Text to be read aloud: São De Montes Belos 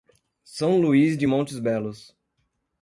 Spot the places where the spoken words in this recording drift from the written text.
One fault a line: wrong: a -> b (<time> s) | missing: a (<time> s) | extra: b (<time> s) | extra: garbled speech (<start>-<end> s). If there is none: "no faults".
extra: Luís (0.8 s)